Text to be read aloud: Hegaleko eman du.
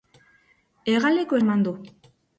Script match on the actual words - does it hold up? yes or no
yes